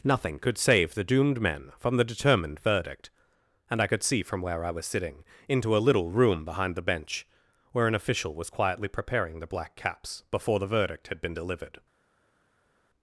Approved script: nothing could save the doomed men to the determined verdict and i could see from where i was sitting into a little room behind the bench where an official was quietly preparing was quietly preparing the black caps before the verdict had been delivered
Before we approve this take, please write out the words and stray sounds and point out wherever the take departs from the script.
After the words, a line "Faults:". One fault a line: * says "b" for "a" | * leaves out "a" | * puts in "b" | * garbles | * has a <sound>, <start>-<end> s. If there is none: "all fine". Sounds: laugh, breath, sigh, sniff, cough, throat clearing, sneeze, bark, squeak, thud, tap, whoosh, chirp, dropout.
nothing could save the doomed men from the determined verdict and i could see from where i was sitting into a little room behind the bench where an official was quietly preparing the black caps before the verdict had been delivered
Faults:
* says "from" for "to"
* leaves out "was quietly preparing"